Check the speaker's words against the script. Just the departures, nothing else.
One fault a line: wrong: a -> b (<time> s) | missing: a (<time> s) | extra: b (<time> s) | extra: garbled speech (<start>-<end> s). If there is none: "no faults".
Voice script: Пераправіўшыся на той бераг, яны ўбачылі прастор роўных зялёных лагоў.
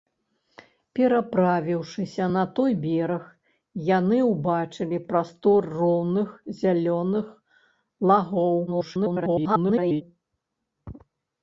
extra: garbled speech (8.7-10.0 s)